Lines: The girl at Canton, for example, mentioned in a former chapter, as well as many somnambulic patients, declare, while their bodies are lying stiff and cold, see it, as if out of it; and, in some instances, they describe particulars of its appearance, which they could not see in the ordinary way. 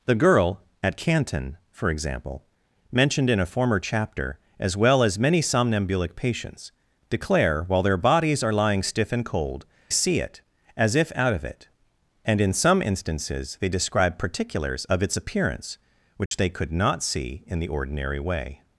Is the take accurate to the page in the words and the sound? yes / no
no